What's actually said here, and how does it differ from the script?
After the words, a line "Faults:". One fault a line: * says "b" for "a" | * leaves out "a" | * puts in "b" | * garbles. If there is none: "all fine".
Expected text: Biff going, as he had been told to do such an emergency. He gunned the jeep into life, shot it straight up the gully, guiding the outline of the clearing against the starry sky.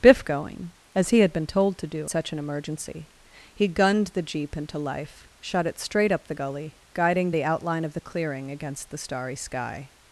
Biff going, as he had been told to do such an emergency. He gunned the jeep into life, shot it straight up the gully, guiding the outline of the clearing against the starry sky.
Faults:
all fine